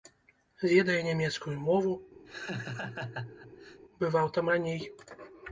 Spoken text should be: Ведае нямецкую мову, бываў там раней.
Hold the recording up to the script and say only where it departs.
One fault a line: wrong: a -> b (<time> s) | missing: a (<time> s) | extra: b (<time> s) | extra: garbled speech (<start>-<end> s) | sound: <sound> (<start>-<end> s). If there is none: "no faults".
sound: laugh (2.2-3.8 s)